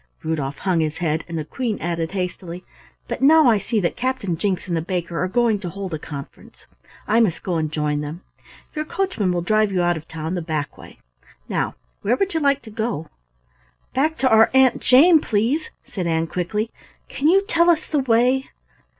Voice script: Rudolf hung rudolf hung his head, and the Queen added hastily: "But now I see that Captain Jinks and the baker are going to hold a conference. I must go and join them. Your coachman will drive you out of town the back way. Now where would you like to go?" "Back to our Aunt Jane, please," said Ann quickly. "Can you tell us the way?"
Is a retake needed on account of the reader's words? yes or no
yes